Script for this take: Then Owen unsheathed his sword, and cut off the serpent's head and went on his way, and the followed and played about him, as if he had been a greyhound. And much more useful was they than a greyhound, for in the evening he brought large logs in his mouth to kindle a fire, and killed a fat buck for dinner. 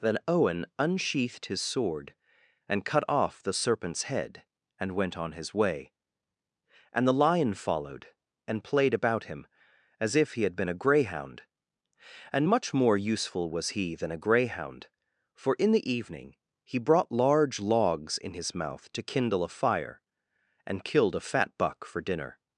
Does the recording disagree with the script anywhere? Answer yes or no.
yes